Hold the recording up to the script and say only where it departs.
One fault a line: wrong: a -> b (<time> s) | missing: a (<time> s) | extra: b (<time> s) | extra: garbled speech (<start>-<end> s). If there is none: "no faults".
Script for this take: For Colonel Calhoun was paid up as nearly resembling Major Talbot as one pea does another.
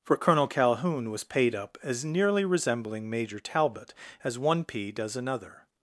no faults